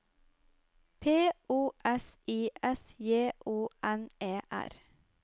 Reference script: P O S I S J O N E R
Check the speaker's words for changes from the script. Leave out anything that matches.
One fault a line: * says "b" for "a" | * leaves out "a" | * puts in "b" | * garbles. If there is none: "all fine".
all fine